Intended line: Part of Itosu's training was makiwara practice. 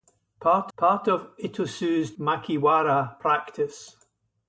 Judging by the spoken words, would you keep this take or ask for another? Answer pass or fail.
fail